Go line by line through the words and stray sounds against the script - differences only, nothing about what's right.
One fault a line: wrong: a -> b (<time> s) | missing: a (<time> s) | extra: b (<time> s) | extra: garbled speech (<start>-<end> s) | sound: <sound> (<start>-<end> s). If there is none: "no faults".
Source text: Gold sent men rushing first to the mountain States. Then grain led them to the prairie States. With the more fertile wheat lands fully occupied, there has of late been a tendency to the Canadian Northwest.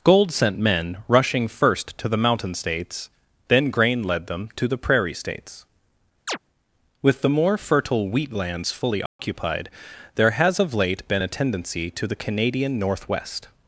sound: chirp (6.3-6.4 s)
sound: dropout (9.1-9.2 s)